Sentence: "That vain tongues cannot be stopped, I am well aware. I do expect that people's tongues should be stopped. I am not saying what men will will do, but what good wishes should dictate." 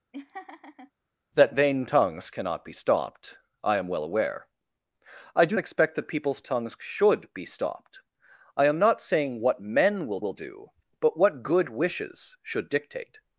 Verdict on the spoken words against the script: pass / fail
pass